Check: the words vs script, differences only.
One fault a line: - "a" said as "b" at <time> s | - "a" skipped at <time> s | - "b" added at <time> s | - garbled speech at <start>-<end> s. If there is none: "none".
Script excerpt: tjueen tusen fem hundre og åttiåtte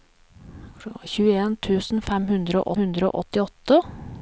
- "hundre og" added at 2.8 s